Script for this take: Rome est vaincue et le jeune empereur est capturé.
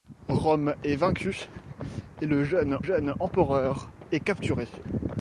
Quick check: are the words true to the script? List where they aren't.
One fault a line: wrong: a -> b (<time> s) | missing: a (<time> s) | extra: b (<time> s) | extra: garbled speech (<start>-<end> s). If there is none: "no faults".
extra: jeune (2.8 s)